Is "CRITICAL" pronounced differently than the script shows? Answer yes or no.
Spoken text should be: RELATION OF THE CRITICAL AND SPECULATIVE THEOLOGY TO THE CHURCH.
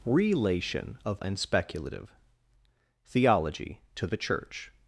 yes